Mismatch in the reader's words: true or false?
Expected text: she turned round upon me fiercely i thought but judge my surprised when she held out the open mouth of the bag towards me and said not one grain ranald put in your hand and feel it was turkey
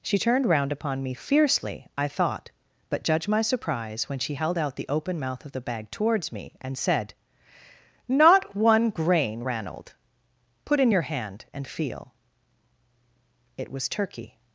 true